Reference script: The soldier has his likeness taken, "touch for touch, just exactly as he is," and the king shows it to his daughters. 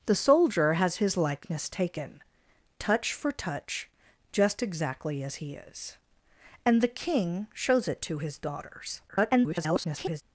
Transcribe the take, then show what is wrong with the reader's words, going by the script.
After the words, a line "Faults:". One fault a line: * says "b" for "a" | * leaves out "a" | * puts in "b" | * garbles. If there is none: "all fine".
The soldier has his likeness taken, "touch for touch, just exactly as he is," and the king shows it to his daughters. [garbled]
Faults:
* garbles